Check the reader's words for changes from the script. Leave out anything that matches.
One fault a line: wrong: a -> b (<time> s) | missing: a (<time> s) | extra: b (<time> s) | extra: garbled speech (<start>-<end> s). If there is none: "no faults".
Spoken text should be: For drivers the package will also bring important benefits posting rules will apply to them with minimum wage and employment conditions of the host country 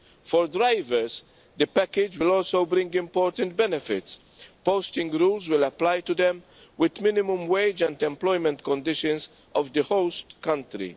no faults